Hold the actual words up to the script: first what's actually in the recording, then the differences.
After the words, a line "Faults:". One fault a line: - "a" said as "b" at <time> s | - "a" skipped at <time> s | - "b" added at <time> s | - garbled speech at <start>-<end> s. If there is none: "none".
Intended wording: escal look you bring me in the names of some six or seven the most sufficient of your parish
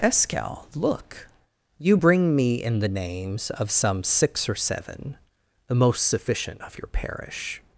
escal look you bring me in the names of some six or seven the most sufficient of your parish
Faults:
none